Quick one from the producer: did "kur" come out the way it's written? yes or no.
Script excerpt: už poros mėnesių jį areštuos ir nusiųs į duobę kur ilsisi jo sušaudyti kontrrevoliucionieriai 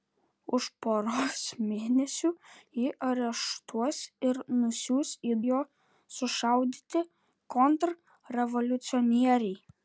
no